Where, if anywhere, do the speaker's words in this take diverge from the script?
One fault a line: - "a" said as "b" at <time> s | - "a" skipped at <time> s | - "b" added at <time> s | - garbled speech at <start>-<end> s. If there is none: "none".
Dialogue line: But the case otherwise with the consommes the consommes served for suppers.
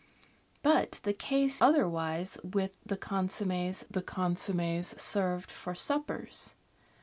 none